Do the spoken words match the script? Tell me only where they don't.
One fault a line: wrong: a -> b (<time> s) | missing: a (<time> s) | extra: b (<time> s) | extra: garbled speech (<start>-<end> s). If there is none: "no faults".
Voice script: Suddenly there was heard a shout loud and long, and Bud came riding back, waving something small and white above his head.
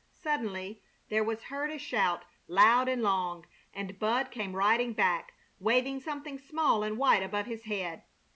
no faults